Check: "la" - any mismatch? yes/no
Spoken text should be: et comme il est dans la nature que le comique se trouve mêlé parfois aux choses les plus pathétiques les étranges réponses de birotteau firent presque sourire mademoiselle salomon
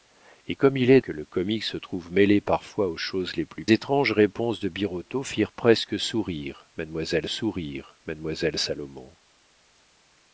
yes